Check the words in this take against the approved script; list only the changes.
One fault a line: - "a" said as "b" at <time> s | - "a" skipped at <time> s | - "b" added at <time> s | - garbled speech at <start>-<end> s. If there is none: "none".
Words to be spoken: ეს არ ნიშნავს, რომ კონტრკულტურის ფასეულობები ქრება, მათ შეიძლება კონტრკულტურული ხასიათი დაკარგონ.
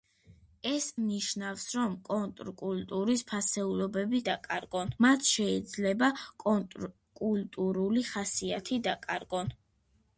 - "არ" skipped at 0.8 s
- "ქრება" said as "დაკარგონ" at 4.3 s